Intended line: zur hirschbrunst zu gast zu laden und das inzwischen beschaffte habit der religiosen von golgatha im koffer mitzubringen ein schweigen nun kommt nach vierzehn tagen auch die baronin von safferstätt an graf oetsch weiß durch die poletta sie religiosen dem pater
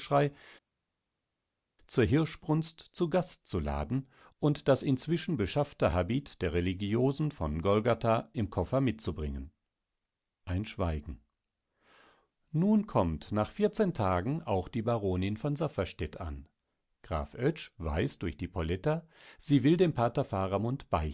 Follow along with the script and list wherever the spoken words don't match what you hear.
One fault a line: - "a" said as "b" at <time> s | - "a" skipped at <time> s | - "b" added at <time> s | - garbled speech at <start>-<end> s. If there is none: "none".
- "religiosen" said as "will" at 19.6 s